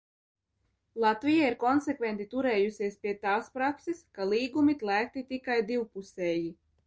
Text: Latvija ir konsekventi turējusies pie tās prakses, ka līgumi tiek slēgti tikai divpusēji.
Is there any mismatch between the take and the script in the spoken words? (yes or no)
yes